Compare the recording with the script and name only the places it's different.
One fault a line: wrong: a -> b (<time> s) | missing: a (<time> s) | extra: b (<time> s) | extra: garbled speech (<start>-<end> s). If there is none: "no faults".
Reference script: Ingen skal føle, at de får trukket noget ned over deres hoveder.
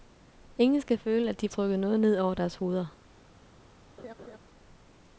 missing: får (1.5 s)